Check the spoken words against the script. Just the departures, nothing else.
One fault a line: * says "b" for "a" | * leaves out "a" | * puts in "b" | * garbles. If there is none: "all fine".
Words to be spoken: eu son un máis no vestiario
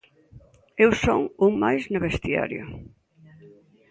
all fine